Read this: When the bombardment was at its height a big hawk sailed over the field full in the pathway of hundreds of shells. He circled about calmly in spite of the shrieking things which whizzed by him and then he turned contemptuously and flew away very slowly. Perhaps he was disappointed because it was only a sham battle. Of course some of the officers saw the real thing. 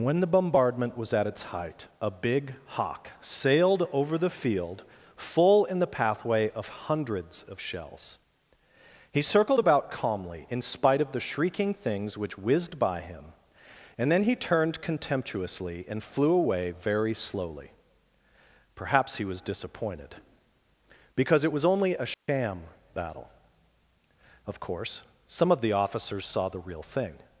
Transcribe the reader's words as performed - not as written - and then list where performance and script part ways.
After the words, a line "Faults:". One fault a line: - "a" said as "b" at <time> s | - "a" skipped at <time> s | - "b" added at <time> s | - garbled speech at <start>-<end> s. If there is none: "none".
When the bombardment was at its height a big hawk sailed over the field full in the pathway of hundreds of shells. He circled about calmly in spite of the shrieking things which whizzed by him and then he turned contemptuously and flew away very slowly. Perhaps he was disappointed because it was only a sham battle. Of course some of the officers saw the real thing.
Faults:
none